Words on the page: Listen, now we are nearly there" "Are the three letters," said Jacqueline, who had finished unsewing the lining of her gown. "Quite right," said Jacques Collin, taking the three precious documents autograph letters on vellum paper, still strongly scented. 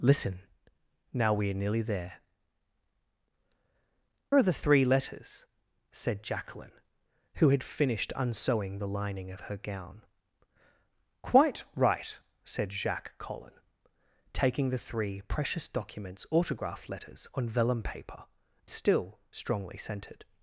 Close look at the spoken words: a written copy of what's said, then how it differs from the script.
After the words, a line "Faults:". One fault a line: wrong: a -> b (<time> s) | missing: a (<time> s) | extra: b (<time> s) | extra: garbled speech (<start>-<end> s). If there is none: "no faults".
Listen, now we are nearly there" "Are the three letters," said Jacqueline, who had finished unsewing the lining of her gown. "Quite right," said Jacques Collin, taking the three precious documents autograph letters on vellum paper, still strongly scented.
Faults:
no faults